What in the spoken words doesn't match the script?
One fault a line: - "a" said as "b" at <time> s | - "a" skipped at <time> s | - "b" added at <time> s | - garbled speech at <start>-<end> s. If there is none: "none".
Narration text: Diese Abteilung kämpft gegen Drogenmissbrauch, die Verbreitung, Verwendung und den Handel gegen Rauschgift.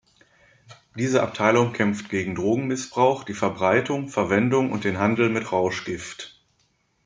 - "gegen" said as "mit" at 5.3 s